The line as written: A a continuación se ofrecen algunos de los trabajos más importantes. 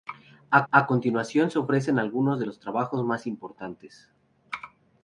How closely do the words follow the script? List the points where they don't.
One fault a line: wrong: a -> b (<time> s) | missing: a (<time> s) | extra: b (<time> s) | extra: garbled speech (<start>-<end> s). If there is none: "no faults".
no faults